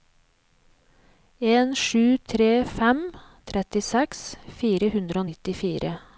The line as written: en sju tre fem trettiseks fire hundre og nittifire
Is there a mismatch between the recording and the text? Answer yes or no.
no